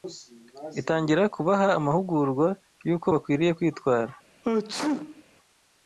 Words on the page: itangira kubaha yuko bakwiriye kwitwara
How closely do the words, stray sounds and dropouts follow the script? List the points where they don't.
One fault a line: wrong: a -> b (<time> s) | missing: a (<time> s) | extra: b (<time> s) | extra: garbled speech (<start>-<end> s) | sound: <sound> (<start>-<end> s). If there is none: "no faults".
extra: amahugurwa (1.8 s)
sound: sneeze (4.4-5.2 s)